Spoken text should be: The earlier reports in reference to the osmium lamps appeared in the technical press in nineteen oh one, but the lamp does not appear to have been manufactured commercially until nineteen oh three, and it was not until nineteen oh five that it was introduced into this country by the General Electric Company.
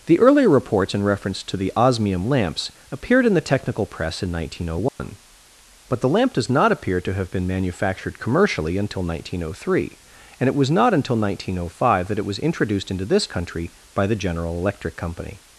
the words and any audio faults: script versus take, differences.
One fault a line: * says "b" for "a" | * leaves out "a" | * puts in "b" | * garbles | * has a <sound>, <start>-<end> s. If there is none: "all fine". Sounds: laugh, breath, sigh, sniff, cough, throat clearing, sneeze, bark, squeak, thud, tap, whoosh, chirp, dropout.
* has a dropout, 4.9-5.0 s